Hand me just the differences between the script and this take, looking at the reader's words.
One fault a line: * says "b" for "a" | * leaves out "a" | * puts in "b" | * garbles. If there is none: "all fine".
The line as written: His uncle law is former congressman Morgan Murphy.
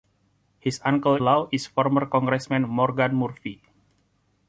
all fine